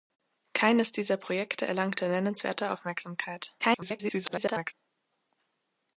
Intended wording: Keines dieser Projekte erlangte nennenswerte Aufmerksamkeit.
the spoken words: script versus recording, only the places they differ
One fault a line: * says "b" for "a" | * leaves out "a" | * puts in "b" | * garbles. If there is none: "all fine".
* garbles